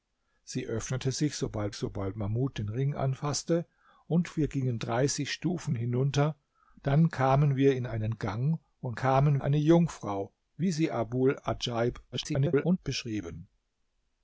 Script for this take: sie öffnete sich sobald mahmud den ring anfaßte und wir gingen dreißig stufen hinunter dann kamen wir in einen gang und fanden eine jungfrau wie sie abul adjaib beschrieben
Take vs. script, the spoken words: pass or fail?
fail